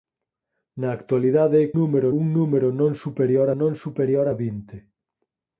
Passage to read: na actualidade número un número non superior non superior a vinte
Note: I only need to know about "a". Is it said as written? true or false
true